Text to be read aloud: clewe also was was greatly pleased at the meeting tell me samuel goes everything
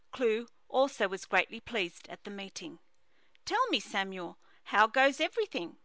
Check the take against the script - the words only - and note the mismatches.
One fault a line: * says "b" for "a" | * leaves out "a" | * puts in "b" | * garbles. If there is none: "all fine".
* leaves out "was"
* puts in "how"